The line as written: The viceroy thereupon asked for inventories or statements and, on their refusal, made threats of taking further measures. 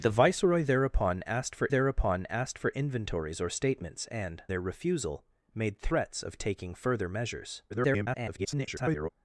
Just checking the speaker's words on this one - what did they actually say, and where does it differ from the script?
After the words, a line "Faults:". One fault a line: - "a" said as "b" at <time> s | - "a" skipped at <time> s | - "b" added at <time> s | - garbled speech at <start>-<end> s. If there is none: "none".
The viceroy thereupon asked for thereupon asked for inventories or statements and, their refusal, made threats of taking further measures. [garbled]
Faults:
- "thereupon asked for" added at 1.7 s
- "on" skipped at 4.4 s
- garbled speech at 7.7-9.1 s